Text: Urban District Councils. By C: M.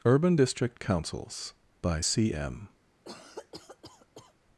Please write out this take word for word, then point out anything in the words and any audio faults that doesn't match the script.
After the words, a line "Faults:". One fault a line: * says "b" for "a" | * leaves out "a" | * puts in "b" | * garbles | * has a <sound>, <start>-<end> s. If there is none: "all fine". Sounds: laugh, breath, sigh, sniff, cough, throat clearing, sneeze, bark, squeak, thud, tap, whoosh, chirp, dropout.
Urban District Councils. By C: M.
Faults:
* has a cough, 3.0-4.3 s